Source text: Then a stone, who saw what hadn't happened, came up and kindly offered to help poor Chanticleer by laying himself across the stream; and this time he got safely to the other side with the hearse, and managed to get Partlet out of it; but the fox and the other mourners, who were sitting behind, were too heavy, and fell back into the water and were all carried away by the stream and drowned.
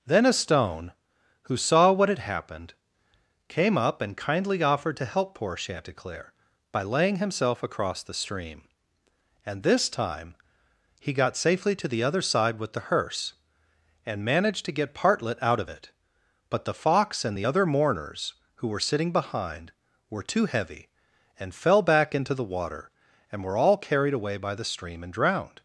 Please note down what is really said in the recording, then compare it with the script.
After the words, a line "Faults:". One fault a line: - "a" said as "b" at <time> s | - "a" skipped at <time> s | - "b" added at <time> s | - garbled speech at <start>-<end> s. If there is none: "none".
Then a stone, who saw what had happened, came up and kindly offered to help poor Chanticleer by laying himself across the stream; and this time he got safely to the other side with the hearse, and managed to get Partlet out of it; but the fox and the other mourners, who were sitting behind, were too heavy, and fell back into the water and were all carried away by the stream and drowned.
Faults:
- "hadn't" said as "had" at 2.1 s